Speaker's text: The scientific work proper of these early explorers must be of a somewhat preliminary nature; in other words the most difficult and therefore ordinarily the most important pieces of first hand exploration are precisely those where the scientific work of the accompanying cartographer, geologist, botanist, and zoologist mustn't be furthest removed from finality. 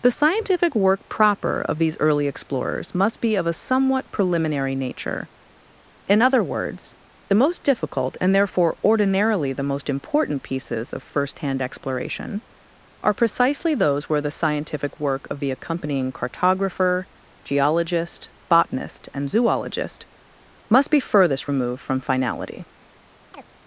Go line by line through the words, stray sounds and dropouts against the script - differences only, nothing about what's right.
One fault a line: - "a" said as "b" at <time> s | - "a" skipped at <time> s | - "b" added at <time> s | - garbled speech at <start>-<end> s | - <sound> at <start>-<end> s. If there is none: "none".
- "mustn't" said as "must" at 20.7 s
- chirp at 23.3-23.5 s